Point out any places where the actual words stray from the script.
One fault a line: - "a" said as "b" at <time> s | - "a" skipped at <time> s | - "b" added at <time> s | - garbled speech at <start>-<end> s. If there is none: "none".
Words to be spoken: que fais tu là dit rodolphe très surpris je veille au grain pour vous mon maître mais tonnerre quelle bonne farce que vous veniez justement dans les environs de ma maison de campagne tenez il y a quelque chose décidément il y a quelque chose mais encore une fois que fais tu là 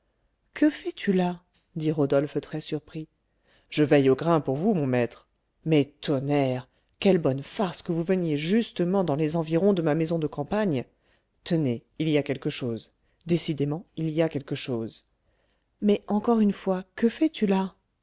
none